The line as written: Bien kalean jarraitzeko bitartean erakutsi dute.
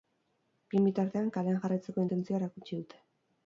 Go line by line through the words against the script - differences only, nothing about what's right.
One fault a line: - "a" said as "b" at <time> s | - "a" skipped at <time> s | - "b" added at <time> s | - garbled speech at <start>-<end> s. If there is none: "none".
- "bitartean" added at 0.9 s
- "bitartean" said as "intentzioa" at 2.0 s